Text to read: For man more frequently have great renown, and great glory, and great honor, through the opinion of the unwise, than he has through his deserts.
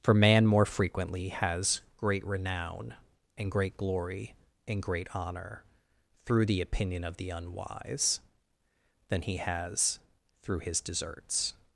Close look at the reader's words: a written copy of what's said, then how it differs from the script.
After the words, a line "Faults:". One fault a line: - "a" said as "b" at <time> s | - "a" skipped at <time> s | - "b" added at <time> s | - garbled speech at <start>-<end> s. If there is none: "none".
For man more frequently has great renown, and great glory, and great honor, through the opinion of the unwise, than he has through his deserts.
Faults:
- "have" said as "has" at 1.3 s